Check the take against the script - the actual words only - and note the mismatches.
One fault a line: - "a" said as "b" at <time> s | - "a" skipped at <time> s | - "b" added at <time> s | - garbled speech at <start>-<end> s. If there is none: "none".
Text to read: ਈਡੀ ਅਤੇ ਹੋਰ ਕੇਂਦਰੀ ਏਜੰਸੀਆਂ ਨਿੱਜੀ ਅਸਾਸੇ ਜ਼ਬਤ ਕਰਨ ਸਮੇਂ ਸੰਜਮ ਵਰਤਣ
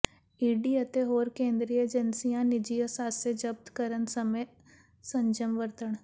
none